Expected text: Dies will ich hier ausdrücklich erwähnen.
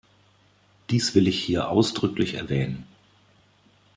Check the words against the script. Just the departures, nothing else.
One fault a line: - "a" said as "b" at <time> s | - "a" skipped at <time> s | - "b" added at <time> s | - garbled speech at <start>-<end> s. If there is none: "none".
none